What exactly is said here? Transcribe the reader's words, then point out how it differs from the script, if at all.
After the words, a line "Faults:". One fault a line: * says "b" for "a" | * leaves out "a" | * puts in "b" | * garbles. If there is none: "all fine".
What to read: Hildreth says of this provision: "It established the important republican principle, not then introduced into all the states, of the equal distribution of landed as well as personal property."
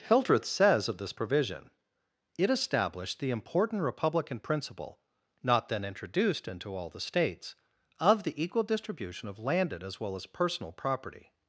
Hildreth says of this provision: "It established the important republican principle, not then introduced into all the states, of the equal distribution of landed as well as personal property."
Faults:
all fine